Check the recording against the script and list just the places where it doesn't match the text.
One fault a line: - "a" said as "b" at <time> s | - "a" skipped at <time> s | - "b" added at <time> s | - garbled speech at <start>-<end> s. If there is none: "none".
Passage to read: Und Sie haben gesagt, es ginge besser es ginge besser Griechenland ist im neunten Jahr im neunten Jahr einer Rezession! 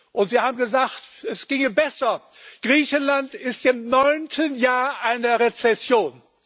- "es ginge besser" skipped at 2.2 s
- "im neunten Jahr" skipped at 5.0 s